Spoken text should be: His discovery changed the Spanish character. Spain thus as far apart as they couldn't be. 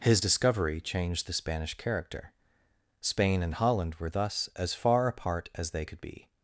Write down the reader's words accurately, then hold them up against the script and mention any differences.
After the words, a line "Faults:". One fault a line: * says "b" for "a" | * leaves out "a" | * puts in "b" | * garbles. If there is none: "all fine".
His discovery changed the Spanish character. Spain and Holland were thus as far apart as they could be.
Faults:
* puts in "and Holland were"
* says "could" for "couldn't"